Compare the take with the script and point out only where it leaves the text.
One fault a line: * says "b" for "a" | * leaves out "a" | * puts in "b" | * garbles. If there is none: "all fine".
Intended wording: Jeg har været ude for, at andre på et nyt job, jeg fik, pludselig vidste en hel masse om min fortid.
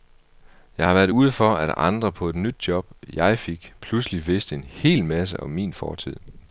all fine